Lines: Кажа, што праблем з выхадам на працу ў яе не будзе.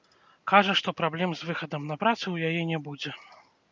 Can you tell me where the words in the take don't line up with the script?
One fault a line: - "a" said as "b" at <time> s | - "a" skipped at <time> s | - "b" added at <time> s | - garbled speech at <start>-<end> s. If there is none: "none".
none